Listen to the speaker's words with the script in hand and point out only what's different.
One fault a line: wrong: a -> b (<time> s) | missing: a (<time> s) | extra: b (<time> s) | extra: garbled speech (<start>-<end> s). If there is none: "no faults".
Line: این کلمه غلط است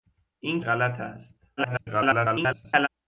missing: کلمه (0.6 s)
extra: garbled speech (1.6-2.9 s)